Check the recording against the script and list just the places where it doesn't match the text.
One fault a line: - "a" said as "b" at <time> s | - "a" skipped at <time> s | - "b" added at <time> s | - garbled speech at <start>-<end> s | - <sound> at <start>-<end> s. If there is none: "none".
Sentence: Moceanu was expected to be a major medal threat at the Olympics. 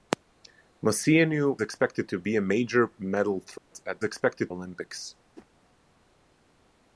- "was" skipped at 1.6 s
- dropout at 3.6-3.7 s
- "the" said as "expected" at 4.0 s
- whoosh at 5.4-5.5 s